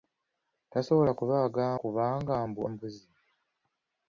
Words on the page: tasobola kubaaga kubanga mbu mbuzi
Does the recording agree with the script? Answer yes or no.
yes